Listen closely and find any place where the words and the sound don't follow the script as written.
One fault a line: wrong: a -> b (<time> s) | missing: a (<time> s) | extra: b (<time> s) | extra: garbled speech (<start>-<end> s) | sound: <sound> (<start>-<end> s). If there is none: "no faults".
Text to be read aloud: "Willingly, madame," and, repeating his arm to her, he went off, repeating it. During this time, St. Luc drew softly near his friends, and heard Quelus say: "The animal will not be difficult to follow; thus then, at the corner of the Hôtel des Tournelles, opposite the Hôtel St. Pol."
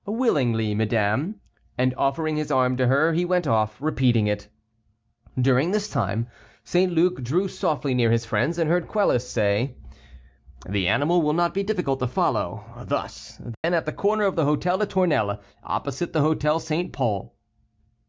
wrong: repeating -> offering (1.9 s)
sound: dropout (13.5-13.6 s)